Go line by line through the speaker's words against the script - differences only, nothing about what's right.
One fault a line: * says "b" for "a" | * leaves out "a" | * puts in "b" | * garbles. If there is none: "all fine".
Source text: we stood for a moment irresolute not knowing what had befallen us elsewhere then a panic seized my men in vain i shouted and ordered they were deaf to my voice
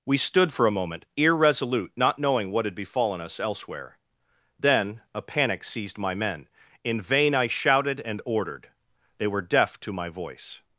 all fine